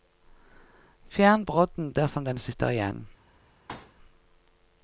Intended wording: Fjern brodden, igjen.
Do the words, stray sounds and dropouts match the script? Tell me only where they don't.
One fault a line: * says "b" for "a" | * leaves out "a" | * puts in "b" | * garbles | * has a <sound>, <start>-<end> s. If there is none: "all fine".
* puts in "dersom den sitter"
* has a thud, 3.7-3.9 s